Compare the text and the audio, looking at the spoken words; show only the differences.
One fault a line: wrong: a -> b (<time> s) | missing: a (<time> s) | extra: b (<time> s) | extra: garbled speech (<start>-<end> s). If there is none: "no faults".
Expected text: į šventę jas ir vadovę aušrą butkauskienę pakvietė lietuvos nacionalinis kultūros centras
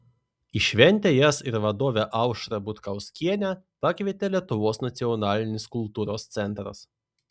no faults